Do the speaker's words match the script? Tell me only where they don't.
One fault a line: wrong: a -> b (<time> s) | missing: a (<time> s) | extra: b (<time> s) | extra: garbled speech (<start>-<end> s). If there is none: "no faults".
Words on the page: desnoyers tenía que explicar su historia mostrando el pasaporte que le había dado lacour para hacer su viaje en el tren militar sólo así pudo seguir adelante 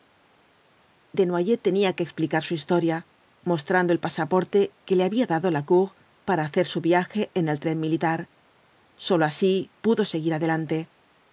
no faults